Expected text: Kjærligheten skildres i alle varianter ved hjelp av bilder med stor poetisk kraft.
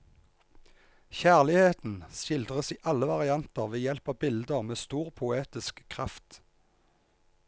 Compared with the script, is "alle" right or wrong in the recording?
right